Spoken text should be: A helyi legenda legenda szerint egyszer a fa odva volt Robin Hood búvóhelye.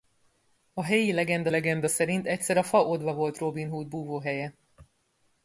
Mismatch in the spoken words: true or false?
false